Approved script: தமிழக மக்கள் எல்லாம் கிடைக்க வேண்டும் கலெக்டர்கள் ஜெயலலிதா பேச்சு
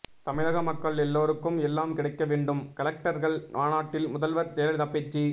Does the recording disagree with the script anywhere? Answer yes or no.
yes